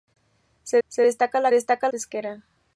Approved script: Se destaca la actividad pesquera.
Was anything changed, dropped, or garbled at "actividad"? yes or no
yes